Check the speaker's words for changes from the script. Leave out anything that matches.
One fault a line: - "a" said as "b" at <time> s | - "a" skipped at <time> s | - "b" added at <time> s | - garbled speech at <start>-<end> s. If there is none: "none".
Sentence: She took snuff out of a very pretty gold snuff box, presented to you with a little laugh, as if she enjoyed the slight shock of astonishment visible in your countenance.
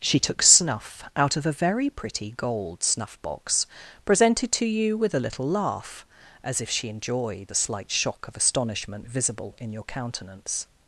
none